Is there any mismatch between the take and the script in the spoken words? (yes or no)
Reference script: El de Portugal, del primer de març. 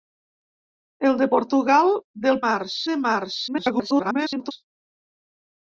yes